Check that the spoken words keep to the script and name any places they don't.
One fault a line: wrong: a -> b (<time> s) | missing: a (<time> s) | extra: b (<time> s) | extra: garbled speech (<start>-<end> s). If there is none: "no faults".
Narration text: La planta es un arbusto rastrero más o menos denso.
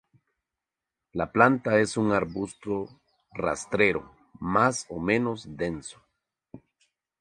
no faults